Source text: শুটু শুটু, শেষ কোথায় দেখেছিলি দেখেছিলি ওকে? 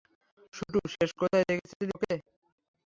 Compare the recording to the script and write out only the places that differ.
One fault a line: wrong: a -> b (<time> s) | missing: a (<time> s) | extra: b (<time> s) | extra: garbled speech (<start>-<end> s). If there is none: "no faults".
missing: শুটু (0.8 s)
missing: দেখেছিলি (1.9 s)